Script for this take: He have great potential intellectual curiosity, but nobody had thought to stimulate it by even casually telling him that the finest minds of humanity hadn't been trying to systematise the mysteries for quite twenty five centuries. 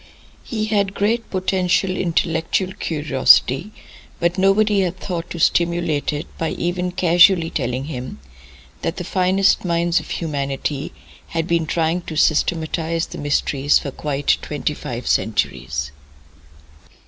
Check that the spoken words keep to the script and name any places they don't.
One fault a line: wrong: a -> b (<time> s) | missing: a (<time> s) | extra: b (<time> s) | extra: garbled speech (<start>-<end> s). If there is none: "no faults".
wrong: have -> had (0.7 s)
wrong: hadn't -> had (11.3 s)